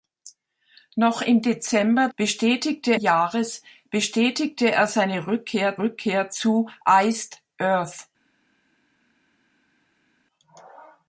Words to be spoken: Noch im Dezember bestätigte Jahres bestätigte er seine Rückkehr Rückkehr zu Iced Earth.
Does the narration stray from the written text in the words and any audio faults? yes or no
no